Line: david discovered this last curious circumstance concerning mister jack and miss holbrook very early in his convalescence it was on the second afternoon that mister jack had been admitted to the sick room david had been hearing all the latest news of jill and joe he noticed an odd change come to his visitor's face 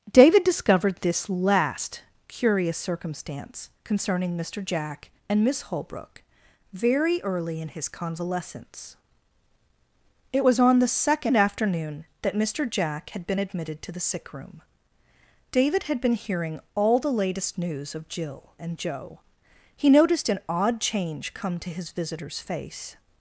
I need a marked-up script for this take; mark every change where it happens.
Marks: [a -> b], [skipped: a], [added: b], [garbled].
david discovered this last curious circumstance concerning mister jack and miss holbrook very early in his convalescence it was on the second afternoon that mister jack had been admitted to the sick room david had been hearing all the latest news of jill and joe he noticed an odd change come to his visitor's face